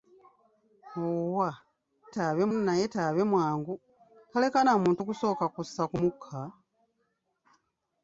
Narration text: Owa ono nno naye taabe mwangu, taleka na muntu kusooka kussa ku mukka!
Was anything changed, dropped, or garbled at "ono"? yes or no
yes